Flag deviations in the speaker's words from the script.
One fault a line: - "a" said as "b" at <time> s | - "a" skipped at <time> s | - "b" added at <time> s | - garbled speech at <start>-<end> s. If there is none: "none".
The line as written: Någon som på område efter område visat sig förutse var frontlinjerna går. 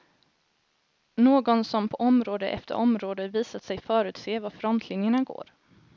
none